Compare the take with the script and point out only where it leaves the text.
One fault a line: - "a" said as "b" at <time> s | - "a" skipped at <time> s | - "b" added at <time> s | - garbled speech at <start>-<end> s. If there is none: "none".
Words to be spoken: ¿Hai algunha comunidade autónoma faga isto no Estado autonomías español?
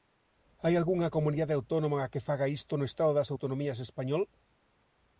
- "que" added at 2.1 s
- "das" added at 3.1 s